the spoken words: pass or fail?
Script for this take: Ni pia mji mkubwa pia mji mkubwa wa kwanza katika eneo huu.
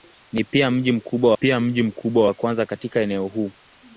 pass